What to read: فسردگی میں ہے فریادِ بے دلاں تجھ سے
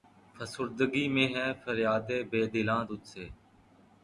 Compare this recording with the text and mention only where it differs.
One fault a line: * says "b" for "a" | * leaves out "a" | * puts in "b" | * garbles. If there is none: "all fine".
all fine